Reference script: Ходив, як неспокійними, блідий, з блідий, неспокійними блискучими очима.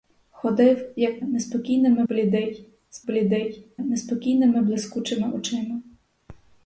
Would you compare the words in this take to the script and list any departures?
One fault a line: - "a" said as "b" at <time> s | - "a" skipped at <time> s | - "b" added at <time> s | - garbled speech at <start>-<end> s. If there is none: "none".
none